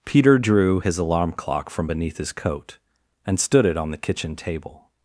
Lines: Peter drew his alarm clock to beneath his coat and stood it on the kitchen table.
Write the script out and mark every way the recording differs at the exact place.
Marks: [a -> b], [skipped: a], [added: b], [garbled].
Peter drew his alarm clock [to -> from] beneath his coat and stood it on the kitchen table.